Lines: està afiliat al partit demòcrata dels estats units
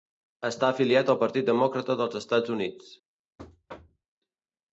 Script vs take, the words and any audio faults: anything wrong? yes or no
yes